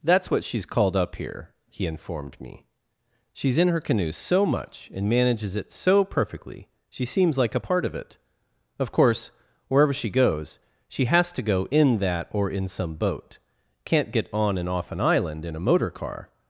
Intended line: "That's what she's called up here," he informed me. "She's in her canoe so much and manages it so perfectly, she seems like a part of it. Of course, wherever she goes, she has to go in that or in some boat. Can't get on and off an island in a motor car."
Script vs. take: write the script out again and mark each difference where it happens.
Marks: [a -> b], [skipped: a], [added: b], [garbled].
"That's what she's called up here," he informed me. "She's in her canoe so much and manages it so perfectly, she seems like a part of it. Of course, wherever she goes, she has to go in that or in some boat. Can't get on and off an island in a motor car."